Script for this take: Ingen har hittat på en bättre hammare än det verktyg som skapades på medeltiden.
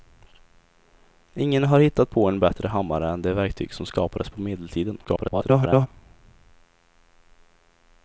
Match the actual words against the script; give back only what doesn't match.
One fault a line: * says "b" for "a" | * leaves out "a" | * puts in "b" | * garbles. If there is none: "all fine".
* garbles